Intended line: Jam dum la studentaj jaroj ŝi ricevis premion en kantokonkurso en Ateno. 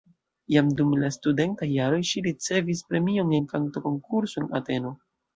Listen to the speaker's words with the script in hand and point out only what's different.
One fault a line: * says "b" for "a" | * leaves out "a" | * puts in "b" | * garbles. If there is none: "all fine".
all fine